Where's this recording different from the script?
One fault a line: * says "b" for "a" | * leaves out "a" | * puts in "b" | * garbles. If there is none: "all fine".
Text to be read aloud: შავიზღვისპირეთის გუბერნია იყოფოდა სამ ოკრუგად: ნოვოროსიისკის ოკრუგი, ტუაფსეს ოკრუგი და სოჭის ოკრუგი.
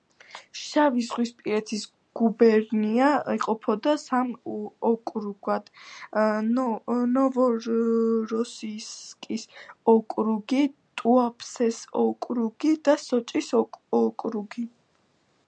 all fine